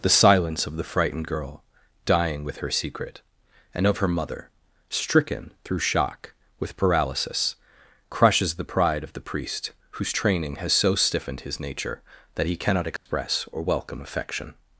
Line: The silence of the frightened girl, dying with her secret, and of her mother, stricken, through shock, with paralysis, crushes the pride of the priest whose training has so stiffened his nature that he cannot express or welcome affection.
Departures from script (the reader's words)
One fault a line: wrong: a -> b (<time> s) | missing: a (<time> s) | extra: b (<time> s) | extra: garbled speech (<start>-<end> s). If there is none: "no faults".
no faults